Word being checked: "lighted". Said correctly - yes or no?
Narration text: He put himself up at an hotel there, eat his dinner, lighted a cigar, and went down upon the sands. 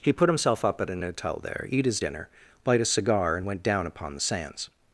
no